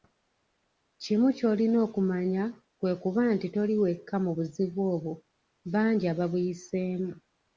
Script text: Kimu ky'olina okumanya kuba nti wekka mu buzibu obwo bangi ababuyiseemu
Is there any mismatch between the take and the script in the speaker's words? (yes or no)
yes